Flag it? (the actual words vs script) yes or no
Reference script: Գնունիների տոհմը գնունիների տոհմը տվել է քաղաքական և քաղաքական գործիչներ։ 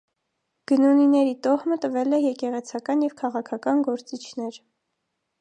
yes